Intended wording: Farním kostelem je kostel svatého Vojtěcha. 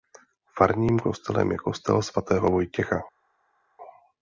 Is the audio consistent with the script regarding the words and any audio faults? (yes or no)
yes